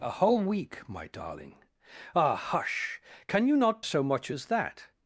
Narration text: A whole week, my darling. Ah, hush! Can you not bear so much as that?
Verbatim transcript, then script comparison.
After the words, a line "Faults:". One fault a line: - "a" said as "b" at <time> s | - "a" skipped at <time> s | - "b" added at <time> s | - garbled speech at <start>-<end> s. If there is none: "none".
A whole week, my darling. Ah, hush! Can you not so much as that?
Faults:
- "bear" skipped at 3.8 s